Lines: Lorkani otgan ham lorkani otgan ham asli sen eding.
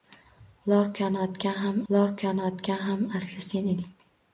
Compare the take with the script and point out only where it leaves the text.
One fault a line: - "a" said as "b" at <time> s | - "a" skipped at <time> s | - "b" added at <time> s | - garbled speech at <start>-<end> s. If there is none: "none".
none